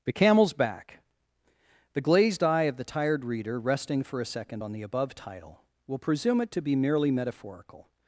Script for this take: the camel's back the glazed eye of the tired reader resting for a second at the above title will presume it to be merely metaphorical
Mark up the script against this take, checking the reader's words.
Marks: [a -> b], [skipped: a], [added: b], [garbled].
the camel's back the glazed eye of the tired reader resting for a second [at -> on] the above title will presume it to be merely metaphorical